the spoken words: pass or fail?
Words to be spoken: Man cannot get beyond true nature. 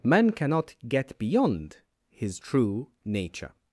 fail